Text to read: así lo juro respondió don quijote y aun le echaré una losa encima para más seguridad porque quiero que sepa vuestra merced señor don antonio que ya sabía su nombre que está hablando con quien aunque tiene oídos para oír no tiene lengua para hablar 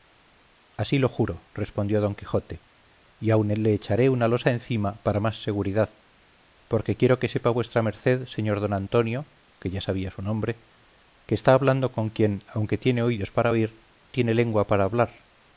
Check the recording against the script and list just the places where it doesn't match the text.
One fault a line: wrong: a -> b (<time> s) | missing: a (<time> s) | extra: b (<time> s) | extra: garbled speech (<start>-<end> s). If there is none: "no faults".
missing: no (13.8 s)